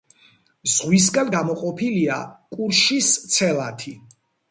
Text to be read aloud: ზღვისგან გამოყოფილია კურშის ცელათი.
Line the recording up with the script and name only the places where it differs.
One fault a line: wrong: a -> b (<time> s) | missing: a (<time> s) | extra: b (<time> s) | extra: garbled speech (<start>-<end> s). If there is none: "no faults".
no faults